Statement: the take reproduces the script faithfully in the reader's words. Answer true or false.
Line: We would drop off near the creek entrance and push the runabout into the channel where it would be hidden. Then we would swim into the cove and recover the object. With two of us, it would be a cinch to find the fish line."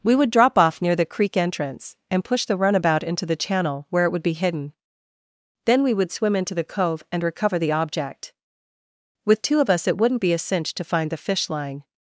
false